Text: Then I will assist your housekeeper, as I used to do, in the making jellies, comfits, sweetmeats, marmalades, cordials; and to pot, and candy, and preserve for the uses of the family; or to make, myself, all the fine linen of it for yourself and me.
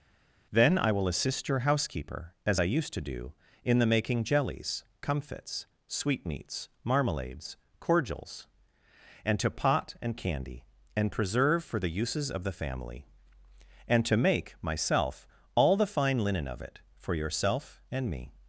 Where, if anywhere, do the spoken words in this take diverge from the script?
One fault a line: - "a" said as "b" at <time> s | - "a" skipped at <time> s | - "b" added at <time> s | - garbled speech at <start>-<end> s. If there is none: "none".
- "or" said as "and" at 13.9 s